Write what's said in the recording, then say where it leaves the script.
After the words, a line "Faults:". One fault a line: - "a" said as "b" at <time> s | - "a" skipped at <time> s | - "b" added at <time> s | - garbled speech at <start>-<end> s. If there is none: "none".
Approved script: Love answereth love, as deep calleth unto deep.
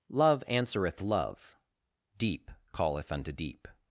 Love answereth love, deep calleth unto deep.
Faults:
- "as" skipped at 1.6 s